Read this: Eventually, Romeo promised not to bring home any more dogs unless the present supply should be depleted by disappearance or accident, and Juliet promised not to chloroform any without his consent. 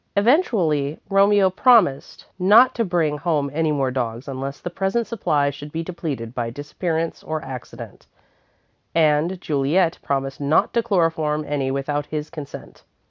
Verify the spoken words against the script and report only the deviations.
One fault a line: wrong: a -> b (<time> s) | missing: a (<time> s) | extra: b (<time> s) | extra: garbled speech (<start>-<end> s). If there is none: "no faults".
no faults